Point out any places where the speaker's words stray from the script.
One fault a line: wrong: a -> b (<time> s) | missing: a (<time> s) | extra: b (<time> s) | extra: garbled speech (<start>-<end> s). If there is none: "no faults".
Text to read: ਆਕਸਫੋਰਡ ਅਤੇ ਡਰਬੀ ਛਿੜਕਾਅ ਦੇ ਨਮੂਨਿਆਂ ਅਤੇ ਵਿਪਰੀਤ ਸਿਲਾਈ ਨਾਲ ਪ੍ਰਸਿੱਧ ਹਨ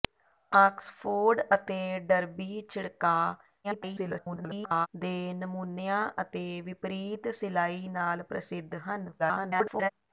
extra: garbled speech (3.6-4.9 s)
extra: garbled speech (9.2-9.9 s)